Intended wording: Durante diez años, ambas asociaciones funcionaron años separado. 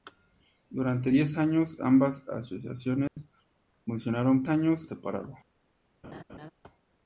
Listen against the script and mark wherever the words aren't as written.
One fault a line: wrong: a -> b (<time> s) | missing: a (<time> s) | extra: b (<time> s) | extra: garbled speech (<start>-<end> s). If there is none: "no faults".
no faults